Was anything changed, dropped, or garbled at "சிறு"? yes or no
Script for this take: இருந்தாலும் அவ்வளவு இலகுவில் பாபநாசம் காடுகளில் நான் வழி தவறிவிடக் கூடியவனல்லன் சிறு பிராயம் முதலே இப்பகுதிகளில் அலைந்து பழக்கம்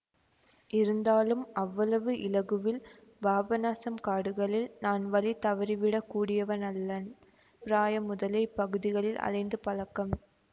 yes